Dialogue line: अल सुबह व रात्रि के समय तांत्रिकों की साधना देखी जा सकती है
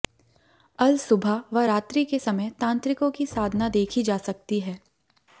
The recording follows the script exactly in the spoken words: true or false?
true